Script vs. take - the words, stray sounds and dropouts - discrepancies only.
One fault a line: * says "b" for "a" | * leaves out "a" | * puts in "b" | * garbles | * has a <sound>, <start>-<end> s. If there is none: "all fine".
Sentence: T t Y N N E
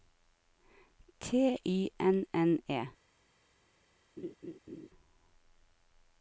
* leaves out "t"
* has a laugh, 4.2-4.9 s